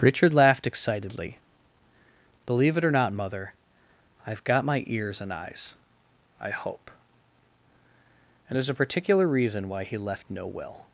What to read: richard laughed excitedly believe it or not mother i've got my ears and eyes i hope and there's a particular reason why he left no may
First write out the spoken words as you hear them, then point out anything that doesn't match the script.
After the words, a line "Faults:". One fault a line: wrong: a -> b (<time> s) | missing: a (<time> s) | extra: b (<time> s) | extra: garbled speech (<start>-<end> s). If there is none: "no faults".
richard laughed excitedly believe it or not mother i've got my ears and eyes i hope and there's a particular reason why he left no will
Faults:
wrong: may -> will (10.5 s)